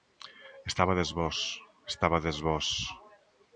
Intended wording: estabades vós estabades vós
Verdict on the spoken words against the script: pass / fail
pass